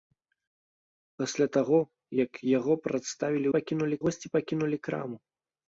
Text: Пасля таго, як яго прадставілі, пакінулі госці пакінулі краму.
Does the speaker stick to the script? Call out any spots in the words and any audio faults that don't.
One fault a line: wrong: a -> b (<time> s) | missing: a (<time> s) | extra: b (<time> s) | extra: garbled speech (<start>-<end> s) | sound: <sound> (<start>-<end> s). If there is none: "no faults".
no faults